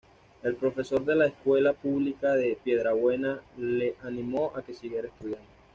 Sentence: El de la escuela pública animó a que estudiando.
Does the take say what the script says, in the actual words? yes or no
no